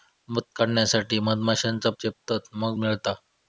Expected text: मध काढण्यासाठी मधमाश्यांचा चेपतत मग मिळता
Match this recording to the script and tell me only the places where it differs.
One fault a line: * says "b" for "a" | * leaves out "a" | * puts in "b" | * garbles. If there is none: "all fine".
all fine